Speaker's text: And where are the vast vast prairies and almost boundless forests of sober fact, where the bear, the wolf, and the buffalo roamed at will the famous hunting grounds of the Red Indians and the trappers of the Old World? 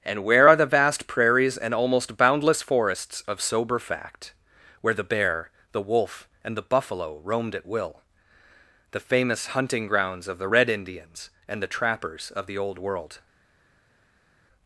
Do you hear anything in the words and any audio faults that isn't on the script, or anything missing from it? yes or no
yes